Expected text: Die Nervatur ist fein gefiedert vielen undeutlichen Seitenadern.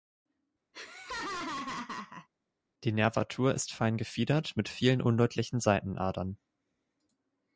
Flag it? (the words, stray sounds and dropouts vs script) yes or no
yes